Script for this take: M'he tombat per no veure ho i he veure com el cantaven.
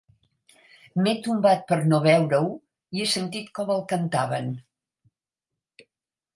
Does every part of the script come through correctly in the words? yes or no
no